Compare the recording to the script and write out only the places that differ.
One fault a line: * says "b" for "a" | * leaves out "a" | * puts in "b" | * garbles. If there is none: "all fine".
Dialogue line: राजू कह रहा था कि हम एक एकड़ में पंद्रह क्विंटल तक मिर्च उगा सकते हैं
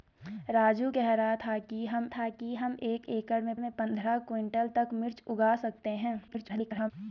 * puts in "था कि हम"
* puts in "में"
* garbles